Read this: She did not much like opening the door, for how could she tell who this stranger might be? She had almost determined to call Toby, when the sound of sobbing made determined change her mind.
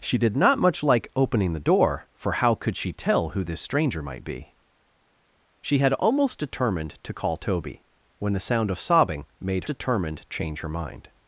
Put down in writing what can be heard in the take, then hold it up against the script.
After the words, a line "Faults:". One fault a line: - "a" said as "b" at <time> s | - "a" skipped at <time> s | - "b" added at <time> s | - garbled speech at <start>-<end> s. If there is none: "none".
She did not much like opening the door, for how could she tell who this stranger might be? She had almost determined to call Toby, when the sound of sobbing made determined change her mind.
Faults:
none